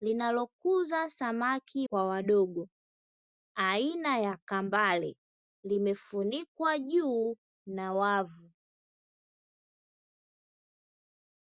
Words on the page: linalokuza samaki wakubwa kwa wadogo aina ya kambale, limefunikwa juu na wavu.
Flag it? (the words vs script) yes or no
yes